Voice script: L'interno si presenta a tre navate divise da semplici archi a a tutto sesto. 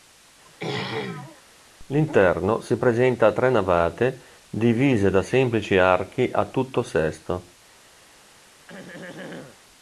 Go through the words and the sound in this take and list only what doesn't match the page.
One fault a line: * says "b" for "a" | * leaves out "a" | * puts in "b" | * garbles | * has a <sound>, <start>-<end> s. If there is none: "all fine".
* has a throat clearing, 0.5-1.4 s
* leaves out "a"
* has a throat clearing, 8.7-9.6 s